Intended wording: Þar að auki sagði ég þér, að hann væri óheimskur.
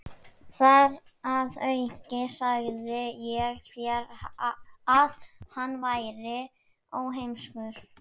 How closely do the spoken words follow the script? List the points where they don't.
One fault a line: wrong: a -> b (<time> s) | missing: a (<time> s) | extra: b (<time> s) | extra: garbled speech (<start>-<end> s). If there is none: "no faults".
no faults